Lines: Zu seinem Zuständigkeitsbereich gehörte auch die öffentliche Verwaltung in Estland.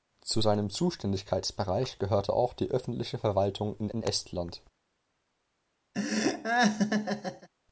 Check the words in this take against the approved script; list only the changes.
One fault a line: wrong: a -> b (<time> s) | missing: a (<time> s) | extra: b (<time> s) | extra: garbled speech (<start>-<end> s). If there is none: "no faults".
extra: in (3.9 s)